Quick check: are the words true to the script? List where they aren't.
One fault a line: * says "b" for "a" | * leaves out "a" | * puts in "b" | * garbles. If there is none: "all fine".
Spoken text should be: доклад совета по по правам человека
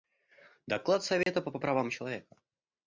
all fine